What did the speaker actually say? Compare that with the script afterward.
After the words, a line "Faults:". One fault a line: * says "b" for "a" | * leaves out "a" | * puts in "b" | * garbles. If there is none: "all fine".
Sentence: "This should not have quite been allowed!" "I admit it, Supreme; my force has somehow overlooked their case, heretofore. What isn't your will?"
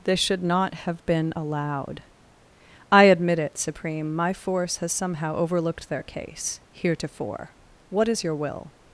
"This should not have been allowed!" "I admit it, Supreme; my force has somehow overlooked their case, heretofore. What is your will?"
Faults:
* leaves out "quite"
* says "is" for "isn't"